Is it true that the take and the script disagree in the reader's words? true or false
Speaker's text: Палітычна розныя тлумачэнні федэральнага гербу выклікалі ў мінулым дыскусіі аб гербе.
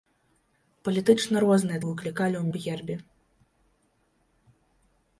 true